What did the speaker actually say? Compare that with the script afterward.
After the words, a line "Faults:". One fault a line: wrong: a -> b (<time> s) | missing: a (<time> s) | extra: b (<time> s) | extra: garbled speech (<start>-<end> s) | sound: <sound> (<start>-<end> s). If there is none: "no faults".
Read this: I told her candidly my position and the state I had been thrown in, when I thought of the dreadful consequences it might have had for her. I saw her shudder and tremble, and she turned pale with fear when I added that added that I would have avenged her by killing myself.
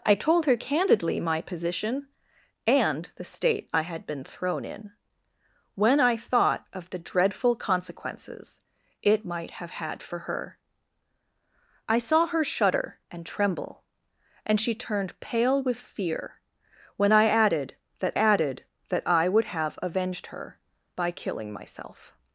I told her candidly my position and the state I had been thrown in, when I thought of the dreadful consequences it might have had for her. I saw her shudder and tremble, and she turned pale with fear when I added that added that I would have avenged her by killing myself.
Faults:
no faults